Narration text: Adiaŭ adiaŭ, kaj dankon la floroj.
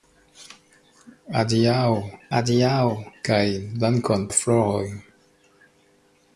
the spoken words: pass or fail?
pass